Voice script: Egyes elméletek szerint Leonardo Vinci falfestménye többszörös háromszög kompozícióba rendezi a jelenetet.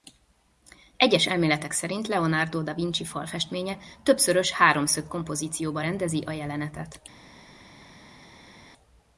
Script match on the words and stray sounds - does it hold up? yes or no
no